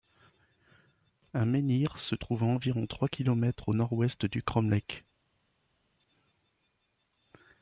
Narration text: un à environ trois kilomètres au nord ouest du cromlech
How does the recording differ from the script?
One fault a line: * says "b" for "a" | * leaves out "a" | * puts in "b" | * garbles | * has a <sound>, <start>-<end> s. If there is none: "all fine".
* puts in "menhir se trouve"